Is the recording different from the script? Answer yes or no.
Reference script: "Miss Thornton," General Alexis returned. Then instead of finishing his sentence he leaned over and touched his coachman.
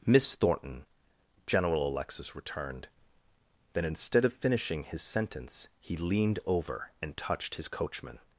no